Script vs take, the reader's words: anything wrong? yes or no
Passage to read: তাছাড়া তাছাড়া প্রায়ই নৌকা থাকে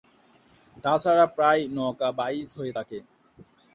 yes